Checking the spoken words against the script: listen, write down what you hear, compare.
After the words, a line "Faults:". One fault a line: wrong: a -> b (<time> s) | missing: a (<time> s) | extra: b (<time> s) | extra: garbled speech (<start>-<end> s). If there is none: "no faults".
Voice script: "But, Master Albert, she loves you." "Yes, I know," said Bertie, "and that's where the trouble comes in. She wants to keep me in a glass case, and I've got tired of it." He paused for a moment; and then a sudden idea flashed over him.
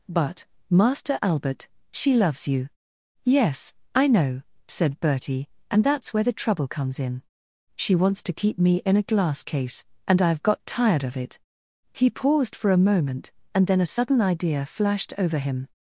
"But, Master Albert, she loves you." "Yes, I know," said Bertie, "and that's where the trouble comes in. She wants to keep me in a glass case, and I've got tired of it." He paused for a moment; and then a sudden idea flashed over him.
Faults:
no faults